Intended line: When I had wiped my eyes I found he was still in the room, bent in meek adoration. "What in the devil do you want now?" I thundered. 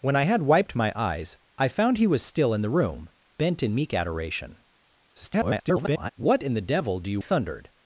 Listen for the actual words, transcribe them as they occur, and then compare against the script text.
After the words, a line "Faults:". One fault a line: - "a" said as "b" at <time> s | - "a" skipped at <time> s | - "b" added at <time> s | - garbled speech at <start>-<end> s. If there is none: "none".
When I had wiped my eyes I found he was still in the room, bent in meek adoration. [garbled] "What in the devil do you thundered.
Faults:
- garbled speech at 5.1-6.1 s
- "want now I" skipped at 7.2 s